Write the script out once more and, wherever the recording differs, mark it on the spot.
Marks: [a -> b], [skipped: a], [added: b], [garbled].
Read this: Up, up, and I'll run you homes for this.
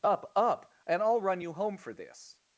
Up, up, and I'll run you [homes -> home] for this.